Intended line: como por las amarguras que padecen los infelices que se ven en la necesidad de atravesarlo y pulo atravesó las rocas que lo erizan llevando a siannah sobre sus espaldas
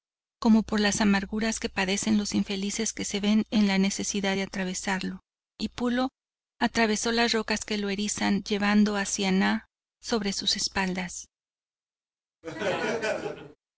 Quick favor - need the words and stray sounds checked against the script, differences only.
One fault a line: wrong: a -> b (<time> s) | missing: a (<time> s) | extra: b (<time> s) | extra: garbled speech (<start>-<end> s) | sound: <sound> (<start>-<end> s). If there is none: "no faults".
sound: laugh (12.4-13.6 s)